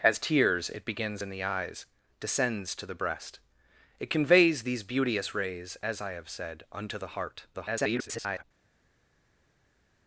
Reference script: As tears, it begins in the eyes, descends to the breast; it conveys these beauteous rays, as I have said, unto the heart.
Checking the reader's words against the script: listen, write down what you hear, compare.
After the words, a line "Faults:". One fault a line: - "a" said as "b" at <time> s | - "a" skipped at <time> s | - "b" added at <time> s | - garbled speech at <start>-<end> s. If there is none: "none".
As tears, it begins in the eyes, descends to the breast; it conveys these beauteous rays, as I have said, unto the heart. [garbled]
Faults:
- garbled speech at 7.5-8.4 s